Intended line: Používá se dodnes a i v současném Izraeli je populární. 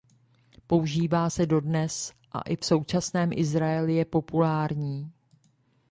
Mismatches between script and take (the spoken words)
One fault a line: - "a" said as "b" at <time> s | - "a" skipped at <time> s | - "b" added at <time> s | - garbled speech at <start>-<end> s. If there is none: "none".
none